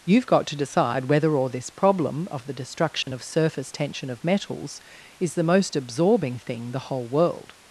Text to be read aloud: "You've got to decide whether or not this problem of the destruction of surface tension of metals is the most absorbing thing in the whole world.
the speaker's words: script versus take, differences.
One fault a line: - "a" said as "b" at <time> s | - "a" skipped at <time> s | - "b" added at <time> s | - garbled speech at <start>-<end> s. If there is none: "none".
- "not" skipped at 1.5 s
- "in" skipped at 6.7 s